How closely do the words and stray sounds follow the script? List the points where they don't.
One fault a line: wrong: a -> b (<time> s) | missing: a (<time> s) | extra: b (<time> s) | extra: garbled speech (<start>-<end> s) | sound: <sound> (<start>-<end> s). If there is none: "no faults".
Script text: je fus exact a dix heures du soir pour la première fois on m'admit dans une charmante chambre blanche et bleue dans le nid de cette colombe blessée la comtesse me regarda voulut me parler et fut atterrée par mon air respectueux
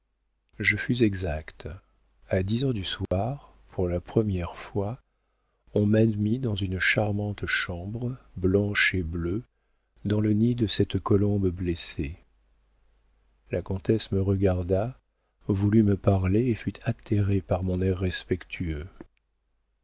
sound: dropout (3.1-3.1 s)